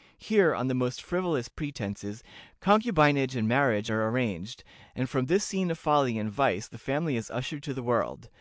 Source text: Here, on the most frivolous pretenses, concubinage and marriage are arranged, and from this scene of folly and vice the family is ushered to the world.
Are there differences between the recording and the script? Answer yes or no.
no